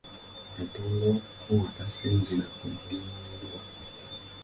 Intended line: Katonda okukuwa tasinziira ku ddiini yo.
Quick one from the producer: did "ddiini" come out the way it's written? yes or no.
yes